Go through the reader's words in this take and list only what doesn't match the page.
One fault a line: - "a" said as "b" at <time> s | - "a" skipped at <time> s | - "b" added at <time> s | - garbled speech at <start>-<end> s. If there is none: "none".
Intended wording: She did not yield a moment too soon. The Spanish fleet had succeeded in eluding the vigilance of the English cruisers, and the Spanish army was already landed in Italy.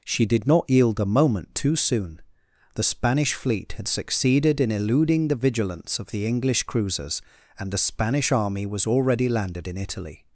none